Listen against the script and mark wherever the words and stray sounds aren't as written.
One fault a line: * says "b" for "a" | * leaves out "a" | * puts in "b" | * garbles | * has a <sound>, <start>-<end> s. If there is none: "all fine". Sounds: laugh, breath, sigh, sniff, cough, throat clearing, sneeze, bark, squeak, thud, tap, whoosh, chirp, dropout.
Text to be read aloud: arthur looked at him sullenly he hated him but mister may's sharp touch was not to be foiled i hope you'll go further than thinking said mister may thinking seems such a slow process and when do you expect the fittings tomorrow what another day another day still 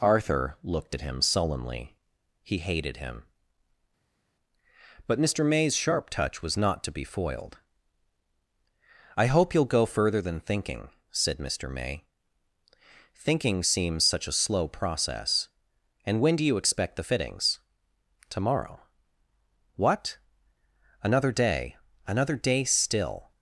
all fine